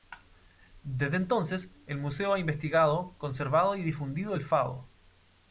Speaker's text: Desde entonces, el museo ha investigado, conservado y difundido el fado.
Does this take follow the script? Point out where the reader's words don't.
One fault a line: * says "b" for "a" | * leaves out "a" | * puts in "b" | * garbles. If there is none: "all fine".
all fine